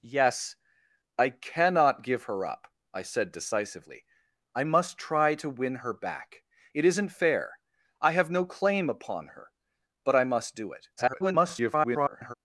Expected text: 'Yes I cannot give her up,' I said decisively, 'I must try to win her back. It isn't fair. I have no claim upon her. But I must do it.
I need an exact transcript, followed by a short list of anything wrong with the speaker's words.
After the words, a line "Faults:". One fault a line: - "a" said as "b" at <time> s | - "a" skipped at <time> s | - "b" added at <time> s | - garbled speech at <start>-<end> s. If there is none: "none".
'Yes I cannot give her up,' I said decisively, 'I must try to win her back. It isn't fair. I have no claim upon her. But I must do it. [garbled]
Faults:
- garbled speech at 11.0-12.3 s